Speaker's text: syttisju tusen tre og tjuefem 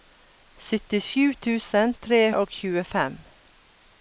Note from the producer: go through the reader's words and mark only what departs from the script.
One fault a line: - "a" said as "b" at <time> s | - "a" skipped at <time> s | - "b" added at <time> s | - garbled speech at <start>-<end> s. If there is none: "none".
none